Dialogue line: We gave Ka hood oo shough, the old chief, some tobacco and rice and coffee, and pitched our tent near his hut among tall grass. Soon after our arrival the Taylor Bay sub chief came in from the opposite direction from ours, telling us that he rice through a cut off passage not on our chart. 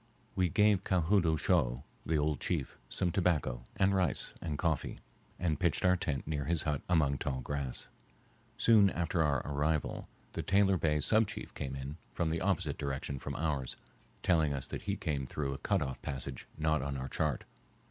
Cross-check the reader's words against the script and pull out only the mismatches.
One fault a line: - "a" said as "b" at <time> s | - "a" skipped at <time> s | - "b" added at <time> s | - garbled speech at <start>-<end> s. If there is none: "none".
- "rice" said as "came" at 14.9 s